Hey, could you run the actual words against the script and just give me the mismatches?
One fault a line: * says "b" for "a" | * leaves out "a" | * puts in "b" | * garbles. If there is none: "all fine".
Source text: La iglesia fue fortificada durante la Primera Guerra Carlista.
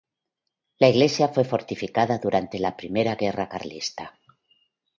all fine